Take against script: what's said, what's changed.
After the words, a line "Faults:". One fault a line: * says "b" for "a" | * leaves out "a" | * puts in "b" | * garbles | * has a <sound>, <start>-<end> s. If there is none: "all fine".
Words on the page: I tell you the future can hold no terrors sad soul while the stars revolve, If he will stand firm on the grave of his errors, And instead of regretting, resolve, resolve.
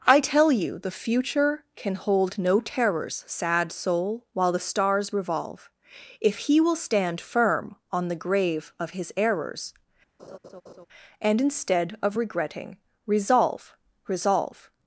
I tell you the future can hold no terrors sad soul while the stars revolve, If he will stand firm on the grave of his errors, And instead of regretting, resolve, resolve.
Faults:
* has a laugh, 10.2-10.9 s